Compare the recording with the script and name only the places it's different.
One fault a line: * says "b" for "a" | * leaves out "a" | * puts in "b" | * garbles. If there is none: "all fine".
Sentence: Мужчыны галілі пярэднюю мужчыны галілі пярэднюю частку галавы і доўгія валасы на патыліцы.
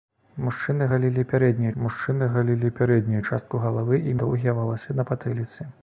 all fine